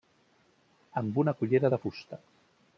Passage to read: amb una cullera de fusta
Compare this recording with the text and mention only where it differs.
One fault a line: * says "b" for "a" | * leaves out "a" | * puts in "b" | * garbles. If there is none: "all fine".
all fine